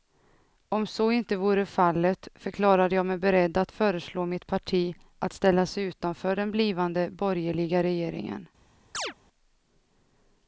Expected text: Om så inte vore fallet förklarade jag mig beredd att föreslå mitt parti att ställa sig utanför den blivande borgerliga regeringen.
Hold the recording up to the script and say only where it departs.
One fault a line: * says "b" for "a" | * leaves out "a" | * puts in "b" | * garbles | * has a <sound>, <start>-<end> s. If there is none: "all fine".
* has a chirp, 8.9-9.1 s